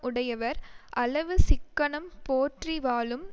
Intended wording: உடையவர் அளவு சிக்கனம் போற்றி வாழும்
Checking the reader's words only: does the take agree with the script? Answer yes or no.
yes